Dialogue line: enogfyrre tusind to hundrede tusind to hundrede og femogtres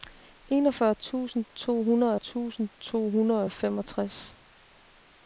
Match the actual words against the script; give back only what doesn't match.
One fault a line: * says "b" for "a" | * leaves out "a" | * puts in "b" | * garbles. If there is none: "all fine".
all fine